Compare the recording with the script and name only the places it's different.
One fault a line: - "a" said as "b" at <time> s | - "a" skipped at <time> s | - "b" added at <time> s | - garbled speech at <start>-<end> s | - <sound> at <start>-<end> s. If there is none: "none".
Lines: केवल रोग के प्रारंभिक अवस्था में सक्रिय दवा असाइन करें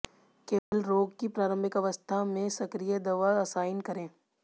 - dropout at 0.6-0.7 s
- "के" said as "की" at 1.2 s